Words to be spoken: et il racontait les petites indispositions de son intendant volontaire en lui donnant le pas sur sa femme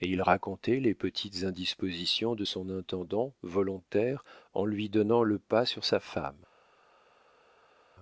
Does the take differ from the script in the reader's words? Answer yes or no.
no